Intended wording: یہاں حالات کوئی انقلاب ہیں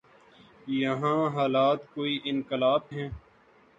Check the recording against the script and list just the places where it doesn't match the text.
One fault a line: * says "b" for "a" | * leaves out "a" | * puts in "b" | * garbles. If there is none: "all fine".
all fine